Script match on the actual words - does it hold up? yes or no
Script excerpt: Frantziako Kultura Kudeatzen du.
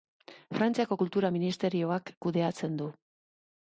no